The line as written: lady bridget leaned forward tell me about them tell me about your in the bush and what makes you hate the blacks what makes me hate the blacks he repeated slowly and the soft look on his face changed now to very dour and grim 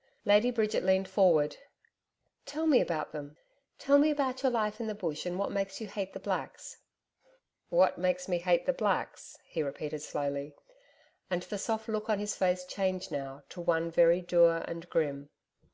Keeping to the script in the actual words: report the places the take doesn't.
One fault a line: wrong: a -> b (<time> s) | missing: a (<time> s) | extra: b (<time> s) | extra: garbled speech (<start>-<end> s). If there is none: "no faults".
extra: life (4.5 s)
extra: one (13.6 s)